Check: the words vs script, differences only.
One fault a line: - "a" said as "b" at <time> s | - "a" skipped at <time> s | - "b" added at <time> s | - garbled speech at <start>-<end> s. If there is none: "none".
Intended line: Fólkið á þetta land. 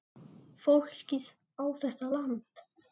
none